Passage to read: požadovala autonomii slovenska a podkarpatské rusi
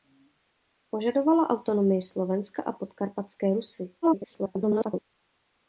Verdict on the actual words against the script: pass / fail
fail